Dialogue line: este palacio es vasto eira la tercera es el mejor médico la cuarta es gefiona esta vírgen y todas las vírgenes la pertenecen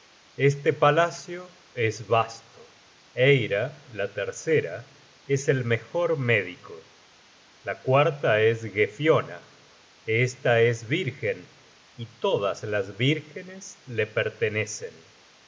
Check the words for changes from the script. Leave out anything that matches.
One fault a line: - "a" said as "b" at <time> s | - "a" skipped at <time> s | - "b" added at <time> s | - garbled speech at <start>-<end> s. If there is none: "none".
- "es" added at 10.6 s